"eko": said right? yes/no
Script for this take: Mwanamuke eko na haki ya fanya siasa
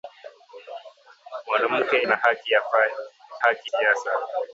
no